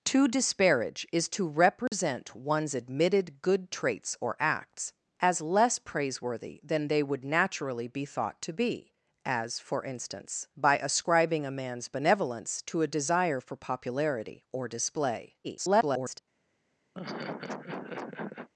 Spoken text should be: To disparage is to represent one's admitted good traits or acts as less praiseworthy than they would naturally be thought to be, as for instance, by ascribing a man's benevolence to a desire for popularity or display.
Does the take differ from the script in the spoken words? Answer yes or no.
yes